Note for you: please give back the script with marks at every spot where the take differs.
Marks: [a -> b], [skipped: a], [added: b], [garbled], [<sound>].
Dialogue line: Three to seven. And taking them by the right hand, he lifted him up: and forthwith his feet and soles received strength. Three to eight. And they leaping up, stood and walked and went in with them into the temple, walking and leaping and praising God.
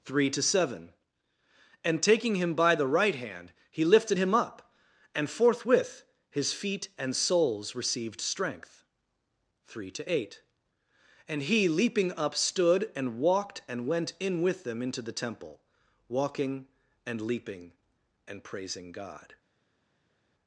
Three to seven. And taking [them -> him] by the right hand, he lifted him up: and forthwith his feet and soles received strength. Three to eight. And [they -> he] leaping up, stood and walked and went in with them into the temple, walking and leaping and praising God.